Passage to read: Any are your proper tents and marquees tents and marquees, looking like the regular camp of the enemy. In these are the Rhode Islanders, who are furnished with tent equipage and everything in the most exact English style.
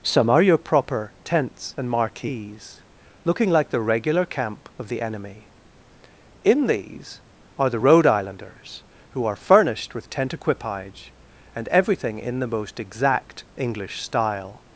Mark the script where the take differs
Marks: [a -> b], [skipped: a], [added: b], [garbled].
[Any -> Some] are your proper tents and marquees [skipped: tents and marquees,] looking like the regular camp of the enemy. In these are the Rhode Islanders, who are furnished with tent equipage and everything in the most exact English style.